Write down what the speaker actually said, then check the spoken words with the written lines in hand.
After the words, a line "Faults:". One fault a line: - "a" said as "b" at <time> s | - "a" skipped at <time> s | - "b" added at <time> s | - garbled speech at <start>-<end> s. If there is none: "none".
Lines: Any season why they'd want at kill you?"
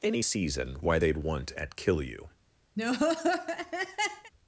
Any season why they'd want at kill you?"
Faults:
none